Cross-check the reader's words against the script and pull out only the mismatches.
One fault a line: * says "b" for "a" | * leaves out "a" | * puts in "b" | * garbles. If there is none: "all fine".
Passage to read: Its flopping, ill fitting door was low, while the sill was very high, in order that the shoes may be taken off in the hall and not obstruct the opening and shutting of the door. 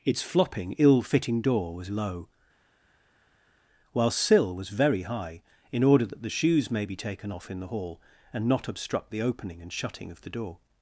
* leaves out "the"